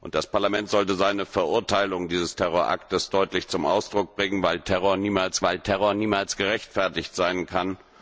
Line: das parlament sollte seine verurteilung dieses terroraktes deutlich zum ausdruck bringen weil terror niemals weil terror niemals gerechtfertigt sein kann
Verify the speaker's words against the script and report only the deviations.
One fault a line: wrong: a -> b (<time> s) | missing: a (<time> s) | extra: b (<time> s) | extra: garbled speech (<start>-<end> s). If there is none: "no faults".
no faults